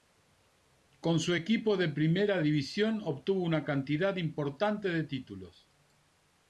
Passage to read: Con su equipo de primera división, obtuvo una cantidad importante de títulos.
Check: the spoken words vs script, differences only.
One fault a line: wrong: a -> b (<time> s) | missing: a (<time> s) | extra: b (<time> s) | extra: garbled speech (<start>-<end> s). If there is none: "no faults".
no faults